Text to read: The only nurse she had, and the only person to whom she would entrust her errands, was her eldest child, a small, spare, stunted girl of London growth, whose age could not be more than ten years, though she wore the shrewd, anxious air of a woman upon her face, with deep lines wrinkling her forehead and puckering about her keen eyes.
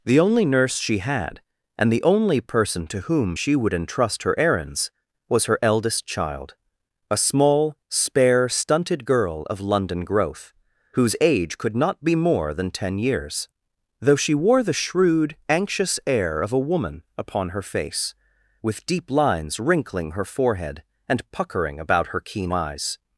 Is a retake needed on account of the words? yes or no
no